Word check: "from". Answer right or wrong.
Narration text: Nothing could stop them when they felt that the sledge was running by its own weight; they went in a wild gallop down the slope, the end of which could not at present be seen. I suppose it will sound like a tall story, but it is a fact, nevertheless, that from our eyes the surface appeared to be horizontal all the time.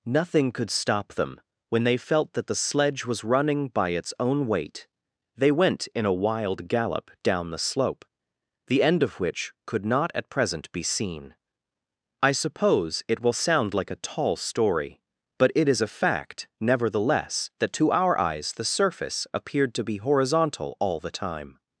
wrong